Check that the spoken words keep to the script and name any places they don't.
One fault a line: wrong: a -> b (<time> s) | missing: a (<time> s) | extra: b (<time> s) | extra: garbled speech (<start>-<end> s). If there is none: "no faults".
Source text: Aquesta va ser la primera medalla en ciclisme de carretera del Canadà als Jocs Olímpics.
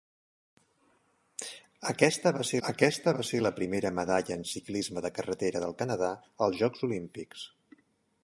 extra: aquesta va ser (2.7 s)